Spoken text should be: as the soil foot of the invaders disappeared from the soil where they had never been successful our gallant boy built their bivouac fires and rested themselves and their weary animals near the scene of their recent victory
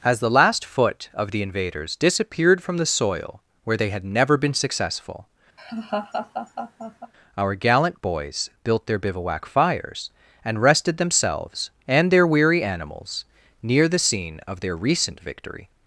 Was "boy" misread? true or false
true